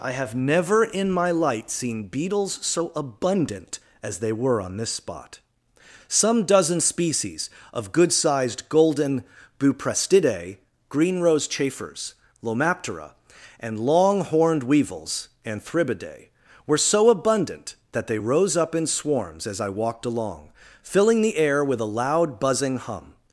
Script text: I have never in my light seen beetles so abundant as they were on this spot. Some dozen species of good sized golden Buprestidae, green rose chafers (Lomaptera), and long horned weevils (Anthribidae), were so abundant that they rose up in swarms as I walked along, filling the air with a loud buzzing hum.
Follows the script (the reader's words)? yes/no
yes